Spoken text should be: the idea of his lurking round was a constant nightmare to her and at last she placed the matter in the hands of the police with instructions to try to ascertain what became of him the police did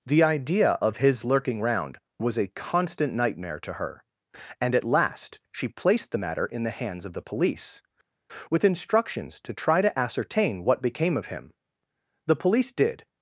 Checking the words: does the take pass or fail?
pass